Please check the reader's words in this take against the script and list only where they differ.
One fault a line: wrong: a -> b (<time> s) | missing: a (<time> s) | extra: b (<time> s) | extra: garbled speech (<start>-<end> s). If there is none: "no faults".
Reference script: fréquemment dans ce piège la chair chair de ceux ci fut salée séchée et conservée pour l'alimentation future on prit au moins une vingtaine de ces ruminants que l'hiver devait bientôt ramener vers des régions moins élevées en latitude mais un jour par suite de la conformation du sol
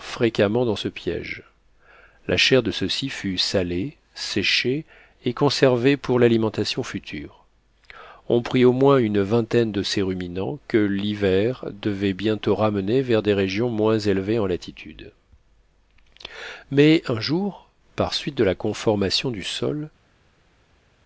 missing: chair (2.6 s)